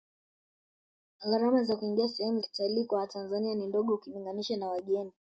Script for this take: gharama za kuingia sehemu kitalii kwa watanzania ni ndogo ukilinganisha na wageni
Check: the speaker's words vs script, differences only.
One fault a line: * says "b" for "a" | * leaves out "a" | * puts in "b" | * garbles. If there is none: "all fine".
all fine